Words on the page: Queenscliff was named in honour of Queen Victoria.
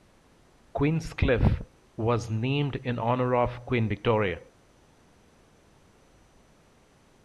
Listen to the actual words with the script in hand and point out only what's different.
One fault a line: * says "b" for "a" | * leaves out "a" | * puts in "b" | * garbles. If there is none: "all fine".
all fine